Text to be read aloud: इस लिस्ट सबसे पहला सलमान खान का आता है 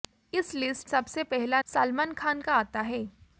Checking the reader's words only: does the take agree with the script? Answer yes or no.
yes